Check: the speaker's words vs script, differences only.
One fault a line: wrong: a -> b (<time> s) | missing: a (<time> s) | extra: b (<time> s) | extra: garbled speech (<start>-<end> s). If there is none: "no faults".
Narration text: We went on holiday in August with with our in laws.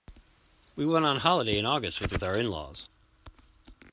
no faults